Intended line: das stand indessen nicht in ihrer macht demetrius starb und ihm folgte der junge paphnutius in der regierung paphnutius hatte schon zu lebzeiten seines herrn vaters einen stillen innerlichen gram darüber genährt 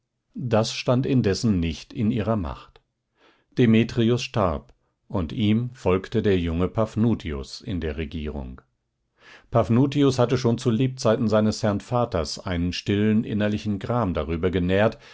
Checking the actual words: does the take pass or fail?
pass